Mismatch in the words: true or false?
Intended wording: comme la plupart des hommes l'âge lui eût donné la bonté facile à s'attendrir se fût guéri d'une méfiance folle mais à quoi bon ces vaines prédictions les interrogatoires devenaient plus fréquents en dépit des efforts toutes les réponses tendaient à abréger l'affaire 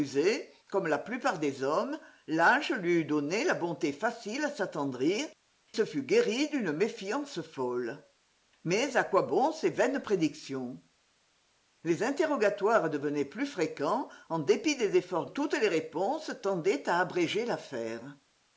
false